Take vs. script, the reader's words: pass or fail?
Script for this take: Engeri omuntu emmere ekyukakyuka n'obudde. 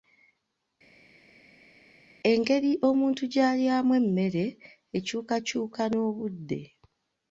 fail